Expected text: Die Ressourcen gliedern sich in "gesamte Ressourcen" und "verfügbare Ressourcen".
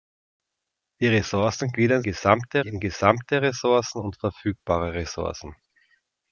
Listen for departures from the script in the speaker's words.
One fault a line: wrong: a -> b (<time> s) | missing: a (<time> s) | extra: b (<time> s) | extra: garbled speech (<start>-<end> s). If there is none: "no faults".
wrong: sich -> gesamte (2.0 s)